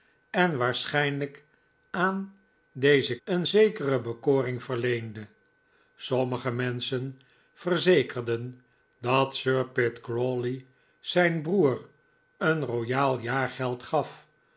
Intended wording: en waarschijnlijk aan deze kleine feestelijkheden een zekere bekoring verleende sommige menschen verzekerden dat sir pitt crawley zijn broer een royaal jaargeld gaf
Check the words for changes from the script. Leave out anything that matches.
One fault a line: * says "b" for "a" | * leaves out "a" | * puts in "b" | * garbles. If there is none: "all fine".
* leaves out "kleine feestelijkheden"